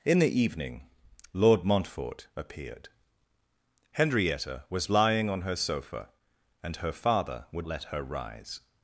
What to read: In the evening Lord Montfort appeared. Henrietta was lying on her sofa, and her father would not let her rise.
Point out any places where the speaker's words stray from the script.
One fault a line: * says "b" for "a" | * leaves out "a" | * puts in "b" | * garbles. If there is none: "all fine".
* leaves out "not"